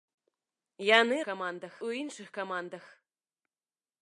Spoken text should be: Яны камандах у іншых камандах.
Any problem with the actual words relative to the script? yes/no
no